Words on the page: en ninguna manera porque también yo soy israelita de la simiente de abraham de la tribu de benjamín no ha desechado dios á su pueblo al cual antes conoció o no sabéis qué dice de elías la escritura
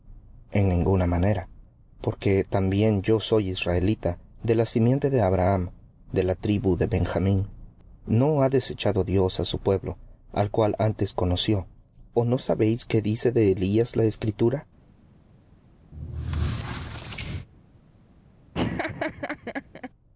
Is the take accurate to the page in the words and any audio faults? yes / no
no